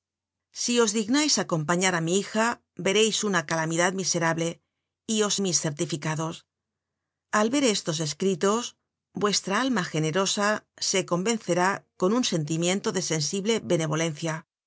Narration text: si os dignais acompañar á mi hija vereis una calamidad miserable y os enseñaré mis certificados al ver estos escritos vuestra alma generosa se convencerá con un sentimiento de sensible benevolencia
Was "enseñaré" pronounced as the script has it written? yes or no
no